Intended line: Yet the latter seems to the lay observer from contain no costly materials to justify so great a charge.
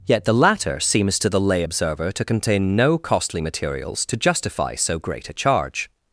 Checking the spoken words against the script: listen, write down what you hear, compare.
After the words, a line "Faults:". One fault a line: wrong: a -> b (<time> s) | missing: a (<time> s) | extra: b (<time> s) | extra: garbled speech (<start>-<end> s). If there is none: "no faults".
Yet the latter seems to the lay observer to contain no costly materials to justify so great a charge.
Faults:
wrong: from -> to (2.1 s)